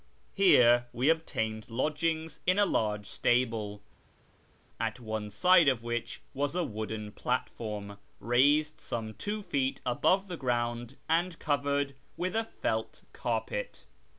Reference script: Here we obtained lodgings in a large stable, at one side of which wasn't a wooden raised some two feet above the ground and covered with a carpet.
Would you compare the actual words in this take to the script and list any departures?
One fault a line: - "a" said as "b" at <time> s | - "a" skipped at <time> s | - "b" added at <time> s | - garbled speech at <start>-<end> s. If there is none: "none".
- "wasn't" said as "was" at 6.3 s
- "platform" added at 7.1 s
- "felt" added at 12.4 s